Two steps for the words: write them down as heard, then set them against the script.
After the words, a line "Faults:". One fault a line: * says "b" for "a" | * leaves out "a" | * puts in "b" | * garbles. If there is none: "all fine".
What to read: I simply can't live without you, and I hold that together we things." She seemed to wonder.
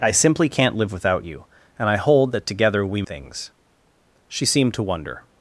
I simply can't live without you, and I hold that together we things." She seemed to wonder.
Faults:
all fine